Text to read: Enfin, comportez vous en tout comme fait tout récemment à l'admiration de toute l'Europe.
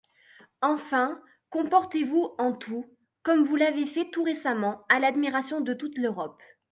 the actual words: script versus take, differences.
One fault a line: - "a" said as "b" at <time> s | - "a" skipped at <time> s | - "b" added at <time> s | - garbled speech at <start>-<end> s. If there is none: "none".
- "vous l'avez" added at 3.4 s